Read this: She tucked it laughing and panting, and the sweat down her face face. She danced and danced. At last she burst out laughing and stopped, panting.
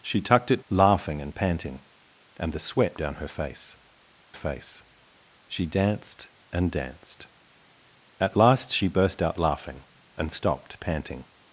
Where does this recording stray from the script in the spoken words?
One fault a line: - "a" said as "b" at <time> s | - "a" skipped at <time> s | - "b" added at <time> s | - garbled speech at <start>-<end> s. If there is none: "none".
none